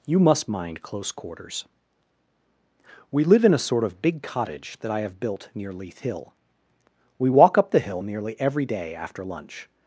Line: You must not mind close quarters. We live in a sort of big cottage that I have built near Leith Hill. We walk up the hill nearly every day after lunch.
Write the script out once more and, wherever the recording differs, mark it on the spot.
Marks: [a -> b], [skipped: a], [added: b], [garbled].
You must [skipped: not] mind close quarters. We live in a sort of big cottage that I have built near Leith Hill. We walk up the hill nearly every day after lunch.